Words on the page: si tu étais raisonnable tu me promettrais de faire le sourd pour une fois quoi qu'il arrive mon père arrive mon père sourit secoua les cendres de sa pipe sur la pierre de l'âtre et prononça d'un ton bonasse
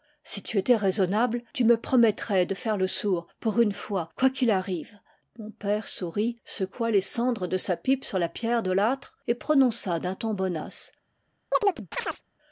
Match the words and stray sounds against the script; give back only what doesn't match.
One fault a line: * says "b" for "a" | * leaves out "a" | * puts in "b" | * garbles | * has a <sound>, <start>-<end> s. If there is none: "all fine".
* leaves out "arrive mon père"
* has a chirp, 11.5-12.2 s